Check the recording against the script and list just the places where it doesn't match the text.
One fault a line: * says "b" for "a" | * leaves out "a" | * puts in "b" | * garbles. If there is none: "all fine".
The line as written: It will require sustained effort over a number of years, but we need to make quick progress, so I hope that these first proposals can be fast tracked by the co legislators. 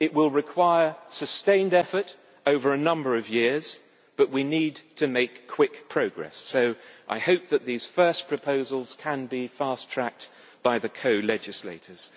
all fine